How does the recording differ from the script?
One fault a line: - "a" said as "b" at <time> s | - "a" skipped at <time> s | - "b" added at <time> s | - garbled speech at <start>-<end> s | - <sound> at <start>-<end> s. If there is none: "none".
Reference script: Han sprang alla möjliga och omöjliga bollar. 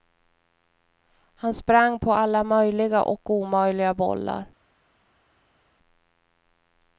- "på" added at 2.0 s